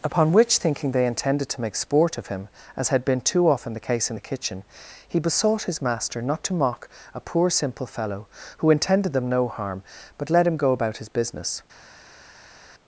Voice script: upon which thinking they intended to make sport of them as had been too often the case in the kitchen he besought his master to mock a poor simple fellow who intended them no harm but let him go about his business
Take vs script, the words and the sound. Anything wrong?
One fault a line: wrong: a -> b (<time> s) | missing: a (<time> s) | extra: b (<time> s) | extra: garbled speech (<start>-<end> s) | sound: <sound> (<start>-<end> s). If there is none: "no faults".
wrong: them -> him (2.3 s)
extra: not (6.2 s)